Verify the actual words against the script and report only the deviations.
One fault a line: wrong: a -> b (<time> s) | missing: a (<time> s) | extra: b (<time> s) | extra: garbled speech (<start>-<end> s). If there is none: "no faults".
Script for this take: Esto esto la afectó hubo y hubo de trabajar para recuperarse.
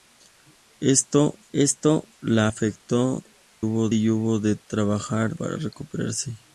no faults